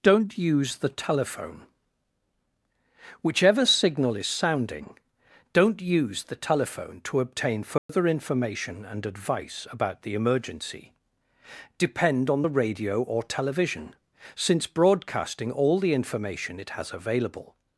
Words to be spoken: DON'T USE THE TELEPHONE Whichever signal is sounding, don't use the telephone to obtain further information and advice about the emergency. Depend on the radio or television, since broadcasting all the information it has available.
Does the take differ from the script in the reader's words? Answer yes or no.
no